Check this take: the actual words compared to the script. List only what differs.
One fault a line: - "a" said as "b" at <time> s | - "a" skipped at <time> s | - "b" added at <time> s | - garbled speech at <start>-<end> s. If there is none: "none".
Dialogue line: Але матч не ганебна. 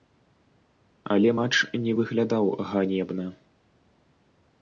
- "выглядаў" added at 2.0 s